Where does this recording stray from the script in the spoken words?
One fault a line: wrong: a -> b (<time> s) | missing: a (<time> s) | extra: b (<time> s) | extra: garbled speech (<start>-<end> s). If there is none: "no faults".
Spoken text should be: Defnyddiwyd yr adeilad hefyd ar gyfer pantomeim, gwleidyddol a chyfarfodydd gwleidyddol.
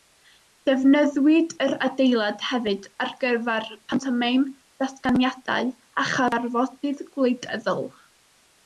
wrong: gwleidyddol -> datganiadau (4.8 s)